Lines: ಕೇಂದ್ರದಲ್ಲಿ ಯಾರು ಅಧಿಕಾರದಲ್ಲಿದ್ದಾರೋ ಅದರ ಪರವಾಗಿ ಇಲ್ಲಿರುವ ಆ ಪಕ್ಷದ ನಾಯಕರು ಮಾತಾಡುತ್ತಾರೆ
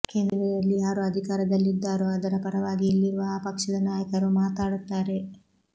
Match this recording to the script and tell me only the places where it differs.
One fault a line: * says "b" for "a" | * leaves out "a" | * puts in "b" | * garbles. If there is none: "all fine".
all fine